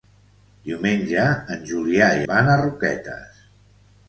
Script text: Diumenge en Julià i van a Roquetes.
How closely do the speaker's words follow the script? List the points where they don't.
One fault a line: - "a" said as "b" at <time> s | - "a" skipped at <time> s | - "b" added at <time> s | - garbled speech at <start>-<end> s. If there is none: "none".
none